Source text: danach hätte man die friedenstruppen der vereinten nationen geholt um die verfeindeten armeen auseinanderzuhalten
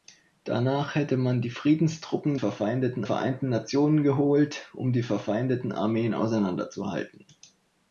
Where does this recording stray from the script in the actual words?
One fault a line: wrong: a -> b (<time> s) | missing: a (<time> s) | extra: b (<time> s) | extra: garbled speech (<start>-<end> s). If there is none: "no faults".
wrong: der -> verfeindeten (2.3 s)